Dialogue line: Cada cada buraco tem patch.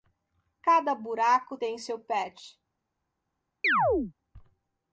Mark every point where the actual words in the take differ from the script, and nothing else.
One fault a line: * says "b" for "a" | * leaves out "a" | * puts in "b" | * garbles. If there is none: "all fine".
* leaves out "cada"
* puts in "seu"